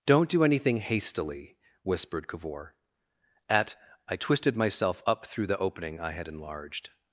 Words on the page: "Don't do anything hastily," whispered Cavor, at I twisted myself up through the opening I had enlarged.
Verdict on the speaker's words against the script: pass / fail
pass